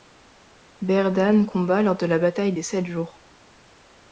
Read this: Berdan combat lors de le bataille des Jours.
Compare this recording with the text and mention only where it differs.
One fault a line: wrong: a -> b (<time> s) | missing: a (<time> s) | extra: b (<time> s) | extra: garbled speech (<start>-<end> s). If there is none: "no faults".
wrong: le -> la (2.1 s)
extra: Sept (2.6 s)